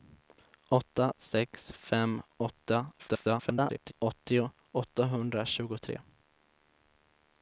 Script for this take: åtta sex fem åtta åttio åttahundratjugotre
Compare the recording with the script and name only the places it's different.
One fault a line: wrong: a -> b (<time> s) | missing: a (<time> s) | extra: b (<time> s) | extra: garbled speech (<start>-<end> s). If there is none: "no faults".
extra: garbled speech (3.0-3.9 s)